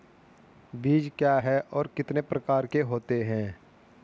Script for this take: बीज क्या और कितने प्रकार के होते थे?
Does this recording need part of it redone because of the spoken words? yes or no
yes